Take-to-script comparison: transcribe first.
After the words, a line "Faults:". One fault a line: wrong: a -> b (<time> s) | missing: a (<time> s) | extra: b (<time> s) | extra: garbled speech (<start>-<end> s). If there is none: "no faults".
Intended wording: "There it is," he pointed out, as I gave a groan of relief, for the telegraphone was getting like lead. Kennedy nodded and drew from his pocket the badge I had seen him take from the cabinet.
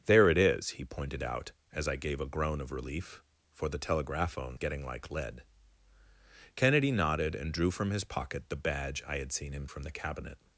"There it is," he pointed out, as I gave a groan of relief, for the telegraphone getting like lead. Kennedy nodded and drew from his pocket the badge I had seen him from the cabinet.
Faults:
missing: was (4.6 s)
missing: take (9.7 s)